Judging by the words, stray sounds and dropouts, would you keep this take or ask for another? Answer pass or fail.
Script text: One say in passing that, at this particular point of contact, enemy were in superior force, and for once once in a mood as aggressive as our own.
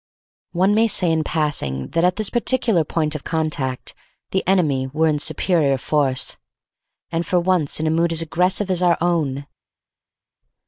fail